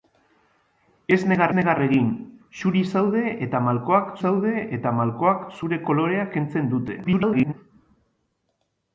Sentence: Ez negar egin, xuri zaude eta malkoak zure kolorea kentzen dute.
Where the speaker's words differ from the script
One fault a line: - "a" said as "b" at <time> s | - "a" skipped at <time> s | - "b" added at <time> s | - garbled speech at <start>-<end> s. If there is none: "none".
- "negar" added at 1.6 s
- "zaude eta malkoak" added at 4.2 s
- garbled speech at 7.0-7.5 s